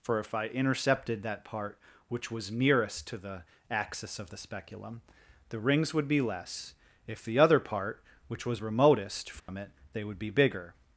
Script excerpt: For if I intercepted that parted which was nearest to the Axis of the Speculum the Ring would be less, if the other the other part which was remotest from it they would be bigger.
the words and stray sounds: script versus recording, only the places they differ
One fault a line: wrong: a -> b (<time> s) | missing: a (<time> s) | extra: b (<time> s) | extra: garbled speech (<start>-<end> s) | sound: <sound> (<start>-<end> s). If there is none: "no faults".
wrong: parted -> part (1.4 s)
wrong: Ring -> Rings (5.6 s)
missing: the other (7.6 s)
sound: dropout (9.4-9.5 s)